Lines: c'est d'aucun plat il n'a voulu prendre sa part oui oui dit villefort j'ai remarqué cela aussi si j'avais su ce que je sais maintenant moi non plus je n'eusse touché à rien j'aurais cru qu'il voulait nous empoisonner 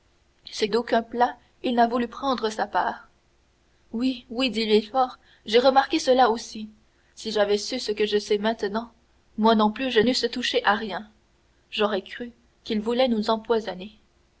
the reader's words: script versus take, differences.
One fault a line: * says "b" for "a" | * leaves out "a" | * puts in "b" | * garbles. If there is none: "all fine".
all fine